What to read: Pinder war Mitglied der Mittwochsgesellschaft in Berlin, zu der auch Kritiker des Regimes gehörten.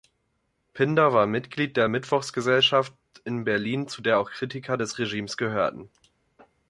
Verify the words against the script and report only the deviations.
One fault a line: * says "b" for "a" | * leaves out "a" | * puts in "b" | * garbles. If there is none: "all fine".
all fine